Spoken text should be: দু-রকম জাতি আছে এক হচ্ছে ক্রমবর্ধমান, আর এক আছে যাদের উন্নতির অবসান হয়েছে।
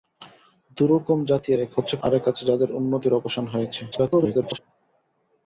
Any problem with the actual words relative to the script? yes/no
yes